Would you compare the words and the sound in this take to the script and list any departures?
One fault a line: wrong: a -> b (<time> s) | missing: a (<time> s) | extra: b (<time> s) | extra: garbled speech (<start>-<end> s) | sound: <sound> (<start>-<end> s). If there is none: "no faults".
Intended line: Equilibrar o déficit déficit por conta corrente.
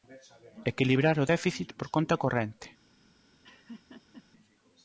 missing: déficit (1.7 s)
sound: laugh (3.4-4.2 s)